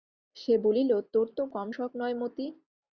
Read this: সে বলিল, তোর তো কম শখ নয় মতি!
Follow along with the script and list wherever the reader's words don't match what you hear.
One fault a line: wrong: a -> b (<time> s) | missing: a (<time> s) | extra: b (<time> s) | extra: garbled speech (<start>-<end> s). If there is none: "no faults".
no faults